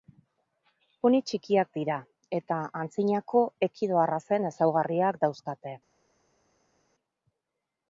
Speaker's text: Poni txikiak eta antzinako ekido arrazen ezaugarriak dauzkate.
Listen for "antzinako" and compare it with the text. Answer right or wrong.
right